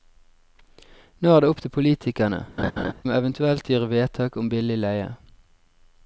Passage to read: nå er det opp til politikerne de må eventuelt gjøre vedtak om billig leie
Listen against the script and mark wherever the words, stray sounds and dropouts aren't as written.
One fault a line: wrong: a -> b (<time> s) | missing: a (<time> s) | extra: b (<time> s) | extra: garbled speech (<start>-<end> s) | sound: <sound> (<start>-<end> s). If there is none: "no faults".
missing: de (2.4 s)
sound: laugh (2.6-2.9 s)